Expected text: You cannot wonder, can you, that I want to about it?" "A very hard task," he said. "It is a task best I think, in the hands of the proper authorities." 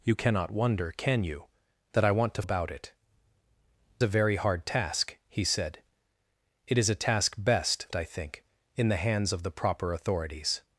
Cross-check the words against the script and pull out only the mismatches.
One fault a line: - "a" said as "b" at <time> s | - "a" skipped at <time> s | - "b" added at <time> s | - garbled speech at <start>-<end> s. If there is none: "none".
none